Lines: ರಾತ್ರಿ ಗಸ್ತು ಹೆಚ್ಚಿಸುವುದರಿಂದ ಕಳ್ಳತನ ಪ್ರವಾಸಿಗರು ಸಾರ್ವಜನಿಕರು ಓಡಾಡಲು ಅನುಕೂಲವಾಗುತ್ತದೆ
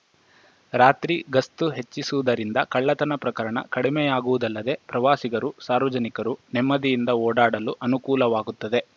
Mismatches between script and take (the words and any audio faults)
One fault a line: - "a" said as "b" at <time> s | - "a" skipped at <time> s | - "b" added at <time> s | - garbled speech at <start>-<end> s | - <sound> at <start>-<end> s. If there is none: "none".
- "ಪ್ರಕರಣ ಕಡಿಮೆಯಾಗುವುದಲ್ಲದೆ" added at 3.2 s
- "ನೆಮ್ಮದಿಯಿಂದ" added at 6.5 s